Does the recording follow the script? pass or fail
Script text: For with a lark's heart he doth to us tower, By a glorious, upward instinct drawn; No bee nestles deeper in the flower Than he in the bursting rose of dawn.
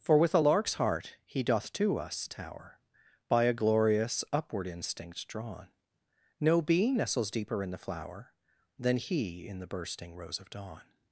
pass